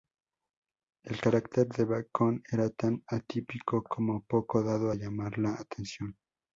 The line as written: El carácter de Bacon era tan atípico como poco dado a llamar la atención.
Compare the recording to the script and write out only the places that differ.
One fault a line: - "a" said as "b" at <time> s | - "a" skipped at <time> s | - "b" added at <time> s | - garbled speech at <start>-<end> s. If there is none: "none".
none